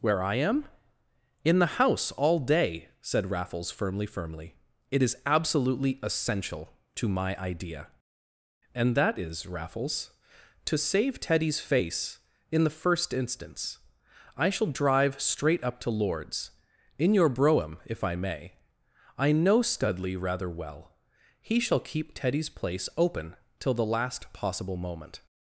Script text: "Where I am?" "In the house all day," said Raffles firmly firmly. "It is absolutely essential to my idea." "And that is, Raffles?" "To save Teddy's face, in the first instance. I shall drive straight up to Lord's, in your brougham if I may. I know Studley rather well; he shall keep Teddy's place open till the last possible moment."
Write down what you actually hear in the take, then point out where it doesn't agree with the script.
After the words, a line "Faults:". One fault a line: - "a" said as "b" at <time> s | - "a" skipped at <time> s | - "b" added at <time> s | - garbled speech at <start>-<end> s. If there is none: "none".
"Where I am?" "In the house all day," said Raffles firmly firmly. "It is absolutely essential to my idea." "And that is, Raffles?" "To save Teddy's face, in the first instance. I shall drive straight up to Lord's, in your brougham if I may. I know Studley rather well; he shall keep Teddy's place open till the last possible moment."
Faults:
none